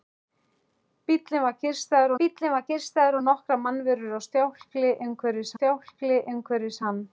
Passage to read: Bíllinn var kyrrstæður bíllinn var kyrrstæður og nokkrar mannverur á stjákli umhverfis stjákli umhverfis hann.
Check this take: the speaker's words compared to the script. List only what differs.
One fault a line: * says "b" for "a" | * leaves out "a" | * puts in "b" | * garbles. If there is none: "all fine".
all fine